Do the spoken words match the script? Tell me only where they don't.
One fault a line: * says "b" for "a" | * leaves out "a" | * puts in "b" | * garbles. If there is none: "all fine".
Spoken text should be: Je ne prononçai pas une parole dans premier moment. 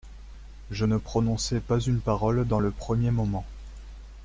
* puts in "le"